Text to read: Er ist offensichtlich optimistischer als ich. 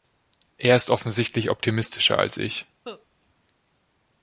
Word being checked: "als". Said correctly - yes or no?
yes